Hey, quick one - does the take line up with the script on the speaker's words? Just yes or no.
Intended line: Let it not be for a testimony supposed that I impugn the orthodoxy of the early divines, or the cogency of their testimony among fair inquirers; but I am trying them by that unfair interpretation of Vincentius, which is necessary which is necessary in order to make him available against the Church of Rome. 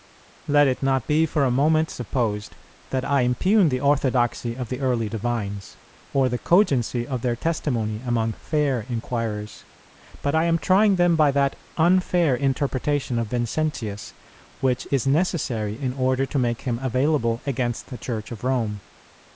no